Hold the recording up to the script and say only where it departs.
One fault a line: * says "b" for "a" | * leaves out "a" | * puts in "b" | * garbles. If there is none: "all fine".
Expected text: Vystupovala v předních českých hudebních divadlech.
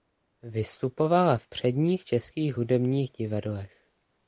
all fine